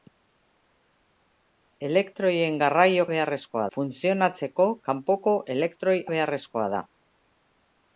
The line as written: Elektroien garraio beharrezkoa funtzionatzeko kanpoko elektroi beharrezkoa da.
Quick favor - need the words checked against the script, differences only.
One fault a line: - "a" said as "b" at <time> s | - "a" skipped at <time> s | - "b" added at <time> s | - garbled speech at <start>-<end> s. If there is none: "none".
none